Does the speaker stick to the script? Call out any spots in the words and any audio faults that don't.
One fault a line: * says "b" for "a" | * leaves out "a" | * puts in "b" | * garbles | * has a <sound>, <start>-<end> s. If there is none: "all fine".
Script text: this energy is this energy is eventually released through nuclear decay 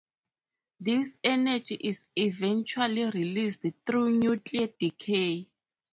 * leaves out "this energy is"